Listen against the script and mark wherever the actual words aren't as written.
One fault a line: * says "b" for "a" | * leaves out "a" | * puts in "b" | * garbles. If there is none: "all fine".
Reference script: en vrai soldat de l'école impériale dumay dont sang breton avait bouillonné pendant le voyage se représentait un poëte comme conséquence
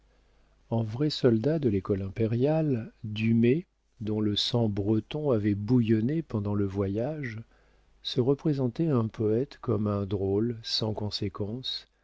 * puts in "le"
* puts in "un drôle sans"